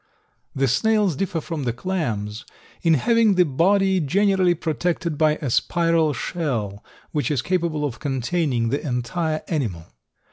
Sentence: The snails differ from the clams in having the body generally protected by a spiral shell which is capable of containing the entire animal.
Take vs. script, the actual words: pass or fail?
pass